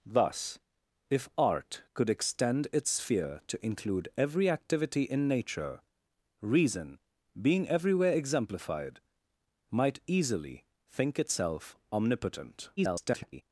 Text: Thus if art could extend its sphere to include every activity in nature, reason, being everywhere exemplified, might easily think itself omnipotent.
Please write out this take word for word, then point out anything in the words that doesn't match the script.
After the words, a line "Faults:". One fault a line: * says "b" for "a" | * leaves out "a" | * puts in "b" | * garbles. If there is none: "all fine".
Thus if art could extend its sphere to include every activity in nature, reason, being everywhere exemplified, might easily think itself omnipotent. [garbled]
Faults:
* garbles